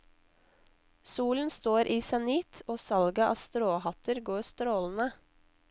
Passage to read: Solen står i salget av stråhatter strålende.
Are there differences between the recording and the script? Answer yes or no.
yes